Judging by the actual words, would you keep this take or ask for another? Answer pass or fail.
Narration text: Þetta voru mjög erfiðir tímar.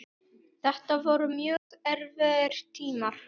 pass